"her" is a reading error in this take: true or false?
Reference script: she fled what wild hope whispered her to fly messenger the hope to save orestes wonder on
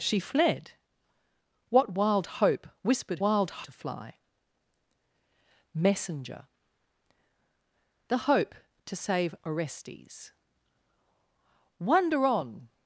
true